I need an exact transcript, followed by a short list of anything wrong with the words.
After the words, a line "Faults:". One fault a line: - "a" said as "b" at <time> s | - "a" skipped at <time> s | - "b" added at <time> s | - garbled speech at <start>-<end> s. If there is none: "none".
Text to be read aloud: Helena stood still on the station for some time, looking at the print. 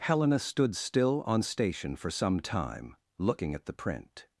Helena stood still on station for some time, looking at the print.
Faults:
- "the" skipped at 1.4 s